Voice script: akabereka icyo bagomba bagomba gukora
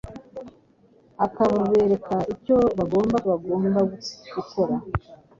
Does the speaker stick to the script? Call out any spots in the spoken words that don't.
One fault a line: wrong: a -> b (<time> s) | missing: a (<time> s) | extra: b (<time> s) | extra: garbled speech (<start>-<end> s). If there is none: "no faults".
no faults